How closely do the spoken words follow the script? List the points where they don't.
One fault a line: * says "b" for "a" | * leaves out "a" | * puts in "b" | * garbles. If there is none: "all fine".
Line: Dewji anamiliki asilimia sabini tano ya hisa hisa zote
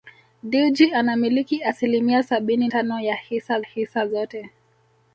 all fine